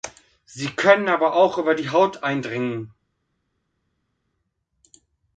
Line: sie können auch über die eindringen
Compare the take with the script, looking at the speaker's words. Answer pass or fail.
fail